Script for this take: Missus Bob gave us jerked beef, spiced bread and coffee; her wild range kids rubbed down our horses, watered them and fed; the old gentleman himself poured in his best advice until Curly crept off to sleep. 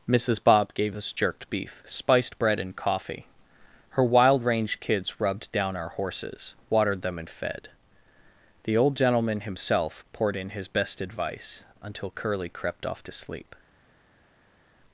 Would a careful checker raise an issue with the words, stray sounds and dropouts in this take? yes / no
no